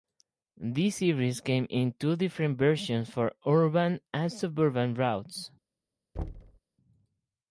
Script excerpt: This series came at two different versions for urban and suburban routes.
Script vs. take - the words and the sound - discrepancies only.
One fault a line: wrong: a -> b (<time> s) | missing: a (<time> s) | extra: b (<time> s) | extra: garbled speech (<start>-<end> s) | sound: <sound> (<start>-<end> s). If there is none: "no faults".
wrong: at -> in (1.7 s)
sound: thud (6.1-6.6 s)